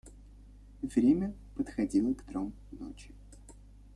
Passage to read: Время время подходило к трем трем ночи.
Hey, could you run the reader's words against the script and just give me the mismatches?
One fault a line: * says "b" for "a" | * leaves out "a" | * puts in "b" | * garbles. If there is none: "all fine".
* leaves out "время"
* leaves out "трем"